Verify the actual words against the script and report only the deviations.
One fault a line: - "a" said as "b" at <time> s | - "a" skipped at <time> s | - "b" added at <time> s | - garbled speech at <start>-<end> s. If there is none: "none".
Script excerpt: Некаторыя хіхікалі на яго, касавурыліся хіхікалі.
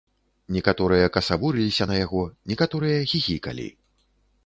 - "хіхікалі" said as "касавурыліся" at 1.2 s
- "касавурыліся" said as "некаторыя" at 2.5 s